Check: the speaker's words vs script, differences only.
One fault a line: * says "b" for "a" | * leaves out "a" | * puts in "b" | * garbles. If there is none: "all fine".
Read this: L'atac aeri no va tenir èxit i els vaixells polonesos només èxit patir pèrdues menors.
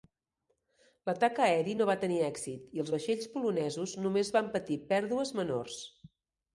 * says "van" for "èxit"